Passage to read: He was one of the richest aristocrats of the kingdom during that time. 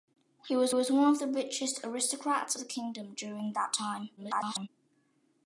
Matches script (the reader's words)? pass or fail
fail